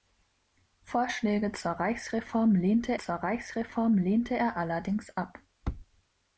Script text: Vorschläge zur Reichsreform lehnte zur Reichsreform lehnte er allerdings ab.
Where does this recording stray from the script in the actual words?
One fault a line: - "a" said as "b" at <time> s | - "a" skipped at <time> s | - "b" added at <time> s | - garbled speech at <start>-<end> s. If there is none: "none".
none